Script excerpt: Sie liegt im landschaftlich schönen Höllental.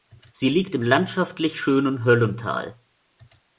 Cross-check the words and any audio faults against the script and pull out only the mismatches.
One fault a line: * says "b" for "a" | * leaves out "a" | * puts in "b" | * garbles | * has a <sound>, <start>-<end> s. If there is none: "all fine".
all fine